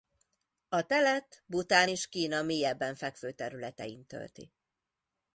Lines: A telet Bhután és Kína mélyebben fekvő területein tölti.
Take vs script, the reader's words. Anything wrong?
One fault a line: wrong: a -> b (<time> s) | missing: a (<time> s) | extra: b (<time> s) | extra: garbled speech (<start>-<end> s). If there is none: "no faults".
no faults